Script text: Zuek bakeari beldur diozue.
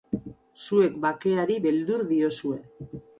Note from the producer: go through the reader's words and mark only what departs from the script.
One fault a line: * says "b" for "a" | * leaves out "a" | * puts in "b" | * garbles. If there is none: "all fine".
all fine